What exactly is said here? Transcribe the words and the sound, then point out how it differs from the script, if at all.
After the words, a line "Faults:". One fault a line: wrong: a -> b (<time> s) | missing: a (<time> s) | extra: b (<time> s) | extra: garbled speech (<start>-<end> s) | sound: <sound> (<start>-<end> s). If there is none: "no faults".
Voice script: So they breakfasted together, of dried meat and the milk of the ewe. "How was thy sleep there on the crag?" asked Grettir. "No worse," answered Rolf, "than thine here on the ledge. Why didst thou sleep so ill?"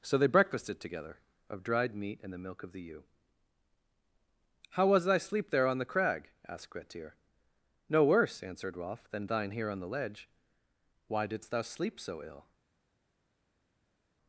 So they breakfasted together, of dried meat and the milk of the ewe. "How was thy sleep there on the crag?" asked Grettir. "No worse," answered Rolf, "than thine here on the ledge. Why didst thou sleep so ill?"
Faults:
no faults